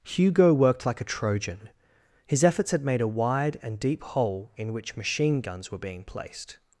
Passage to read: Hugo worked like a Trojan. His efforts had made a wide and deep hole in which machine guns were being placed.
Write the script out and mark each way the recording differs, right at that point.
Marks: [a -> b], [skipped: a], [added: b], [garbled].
Hugo worked like a Trojan. His efforts had made a wide and deep hole in which machine guns were being placed.